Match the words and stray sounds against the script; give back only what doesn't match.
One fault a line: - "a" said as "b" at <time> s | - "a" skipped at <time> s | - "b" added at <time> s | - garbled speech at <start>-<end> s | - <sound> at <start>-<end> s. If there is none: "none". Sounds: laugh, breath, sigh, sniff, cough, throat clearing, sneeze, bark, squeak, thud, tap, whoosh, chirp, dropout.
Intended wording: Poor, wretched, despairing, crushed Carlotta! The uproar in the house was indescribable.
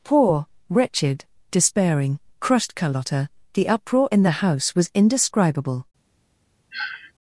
- sniff at 6.7-7.1 s